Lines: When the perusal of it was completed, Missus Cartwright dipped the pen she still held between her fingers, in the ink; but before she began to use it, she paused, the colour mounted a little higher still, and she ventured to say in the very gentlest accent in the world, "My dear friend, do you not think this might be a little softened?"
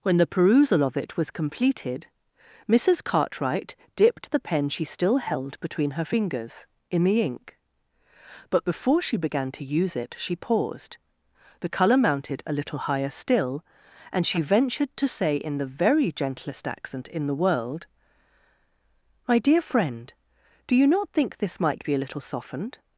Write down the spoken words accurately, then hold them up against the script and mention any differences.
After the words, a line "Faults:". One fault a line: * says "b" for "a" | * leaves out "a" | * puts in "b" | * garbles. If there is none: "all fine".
When the perusal of it was completed, Missus Cartwright dipped the pen she still held between her fingers, in the ink; but before she began to use it, she paused, the colour mounted a little higher still, and she ventured to say in the very gentlest accent in the world, "My dear friend, do you not think this might be a little softened?"
Faults:
all fine